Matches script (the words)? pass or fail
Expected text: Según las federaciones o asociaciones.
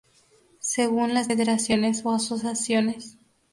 pass